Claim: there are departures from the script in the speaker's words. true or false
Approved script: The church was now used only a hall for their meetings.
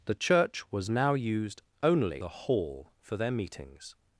false